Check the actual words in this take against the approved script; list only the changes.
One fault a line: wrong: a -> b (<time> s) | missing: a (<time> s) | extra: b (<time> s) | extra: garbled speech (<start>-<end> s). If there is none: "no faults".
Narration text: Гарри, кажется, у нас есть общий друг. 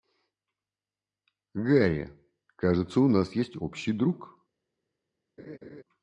no faults